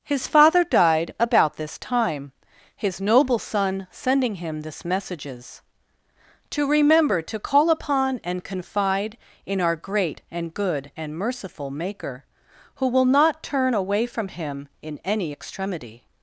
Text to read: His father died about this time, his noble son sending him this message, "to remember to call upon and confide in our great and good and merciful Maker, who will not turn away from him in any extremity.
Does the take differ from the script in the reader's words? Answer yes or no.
yes